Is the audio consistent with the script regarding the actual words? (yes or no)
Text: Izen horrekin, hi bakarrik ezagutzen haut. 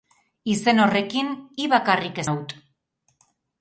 no